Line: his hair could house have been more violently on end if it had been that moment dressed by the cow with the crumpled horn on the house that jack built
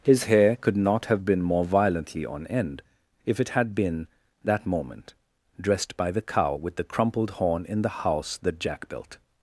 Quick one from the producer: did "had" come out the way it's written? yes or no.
yes